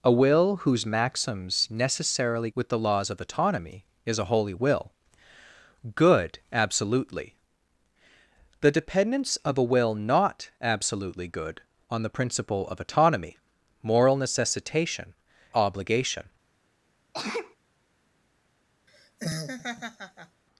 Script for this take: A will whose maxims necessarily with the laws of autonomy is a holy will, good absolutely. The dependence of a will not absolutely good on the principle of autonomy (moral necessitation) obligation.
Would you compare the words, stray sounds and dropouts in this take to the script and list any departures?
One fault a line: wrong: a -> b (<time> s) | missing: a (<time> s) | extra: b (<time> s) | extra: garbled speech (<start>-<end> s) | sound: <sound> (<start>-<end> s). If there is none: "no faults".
sound: sneeze (17.1-17.6 s)
sound: laugh (18.9-20.4 s)